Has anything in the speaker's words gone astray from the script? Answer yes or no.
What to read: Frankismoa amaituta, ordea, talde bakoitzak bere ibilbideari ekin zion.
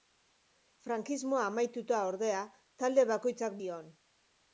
yes